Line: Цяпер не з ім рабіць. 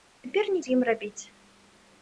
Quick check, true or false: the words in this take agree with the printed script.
true